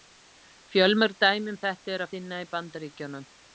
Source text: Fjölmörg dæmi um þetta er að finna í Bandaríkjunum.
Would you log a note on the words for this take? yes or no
no